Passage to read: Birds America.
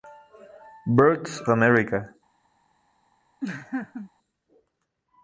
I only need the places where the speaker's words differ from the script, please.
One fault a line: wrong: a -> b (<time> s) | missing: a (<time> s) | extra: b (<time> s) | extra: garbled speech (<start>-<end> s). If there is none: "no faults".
no faults